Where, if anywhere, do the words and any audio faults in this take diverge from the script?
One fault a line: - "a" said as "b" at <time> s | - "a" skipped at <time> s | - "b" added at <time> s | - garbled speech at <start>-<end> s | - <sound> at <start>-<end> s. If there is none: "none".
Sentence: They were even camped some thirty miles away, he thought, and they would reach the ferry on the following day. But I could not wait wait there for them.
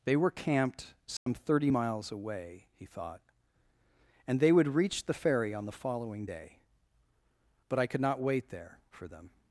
- "even" skipped at 0.3 s
- dropout at 1.2-1.3 s
- "wait" skipped at 8.5 s